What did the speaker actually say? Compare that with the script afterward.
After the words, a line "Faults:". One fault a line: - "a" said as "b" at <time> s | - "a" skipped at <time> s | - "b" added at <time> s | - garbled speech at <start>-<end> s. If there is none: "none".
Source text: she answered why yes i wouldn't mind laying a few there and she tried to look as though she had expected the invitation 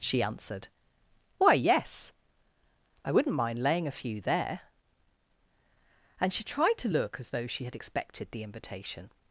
she answered why yes i wouldn't mind laying a few there and she tried to look as though she had expected the invitation
Faults:
none